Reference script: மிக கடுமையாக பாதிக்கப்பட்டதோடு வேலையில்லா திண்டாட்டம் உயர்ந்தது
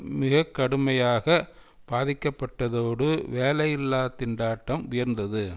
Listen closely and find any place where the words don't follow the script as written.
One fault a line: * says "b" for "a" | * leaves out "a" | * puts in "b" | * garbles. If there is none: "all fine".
all fine